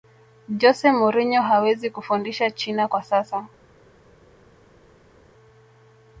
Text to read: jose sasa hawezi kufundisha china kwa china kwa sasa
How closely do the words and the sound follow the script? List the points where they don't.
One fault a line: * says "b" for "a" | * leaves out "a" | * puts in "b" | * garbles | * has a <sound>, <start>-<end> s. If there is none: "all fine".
* says "mourinho" for "sasa"
* leaves out "china kwa"